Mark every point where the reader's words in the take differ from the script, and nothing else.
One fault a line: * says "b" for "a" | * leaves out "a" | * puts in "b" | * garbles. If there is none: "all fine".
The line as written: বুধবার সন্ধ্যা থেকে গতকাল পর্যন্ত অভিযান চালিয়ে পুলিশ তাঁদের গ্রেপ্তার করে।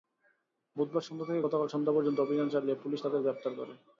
* puts in "সন্ধ্যা"